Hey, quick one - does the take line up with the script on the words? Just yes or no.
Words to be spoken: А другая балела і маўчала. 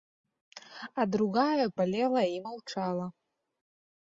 yes